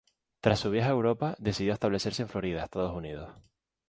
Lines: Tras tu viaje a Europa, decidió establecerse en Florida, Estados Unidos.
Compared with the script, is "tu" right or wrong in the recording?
wrong